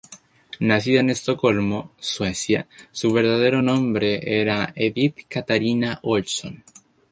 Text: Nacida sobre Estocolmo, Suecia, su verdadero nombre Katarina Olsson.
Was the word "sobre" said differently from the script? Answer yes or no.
yes